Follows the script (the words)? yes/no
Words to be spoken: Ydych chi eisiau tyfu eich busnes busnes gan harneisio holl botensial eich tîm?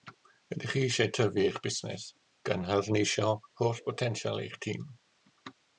no